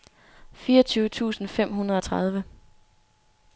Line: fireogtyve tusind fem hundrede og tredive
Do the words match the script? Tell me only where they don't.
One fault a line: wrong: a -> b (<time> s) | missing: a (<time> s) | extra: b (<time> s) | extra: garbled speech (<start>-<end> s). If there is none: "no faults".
no faults